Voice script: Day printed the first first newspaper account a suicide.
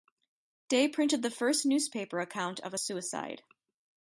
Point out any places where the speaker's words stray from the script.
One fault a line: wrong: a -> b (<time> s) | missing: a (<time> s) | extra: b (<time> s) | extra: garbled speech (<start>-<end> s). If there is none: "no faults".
missing: first (1.6 s)
extra: of (2.6 s)